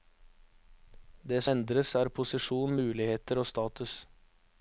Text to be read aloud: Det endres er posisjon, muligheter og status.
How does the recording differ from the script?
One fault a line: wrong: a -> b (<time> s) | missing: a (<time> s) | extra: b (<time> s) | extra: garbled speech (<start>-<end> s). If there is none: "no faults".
no faults